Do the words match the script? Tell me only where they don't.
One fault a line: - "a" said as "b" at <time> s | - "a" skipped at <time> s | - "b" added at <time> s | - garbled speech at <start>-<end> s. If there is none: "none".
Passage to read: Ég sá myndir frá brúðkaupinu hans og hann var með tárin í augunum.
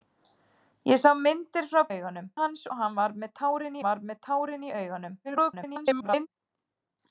- "brúðkaupinu" said as "augunum" at 1.9 s
- "var með tárin" added at 3.9 s
- garbled speech at 5.2-6.3 s